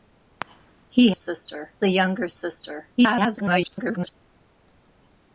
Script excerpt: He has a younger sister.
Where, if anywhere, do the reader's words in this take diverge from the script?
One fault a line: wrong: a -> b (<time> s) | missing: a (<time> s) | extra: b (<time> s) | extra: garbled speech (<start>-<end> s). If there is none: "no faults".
wrong: has -> sister (1.1 s)
extra: garbled speech (3.0-4.2 s)